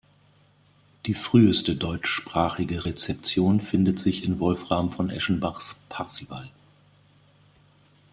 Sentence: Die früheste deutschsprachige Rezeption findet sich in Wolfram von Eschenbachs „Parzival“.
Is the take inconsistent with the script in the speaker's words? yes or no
no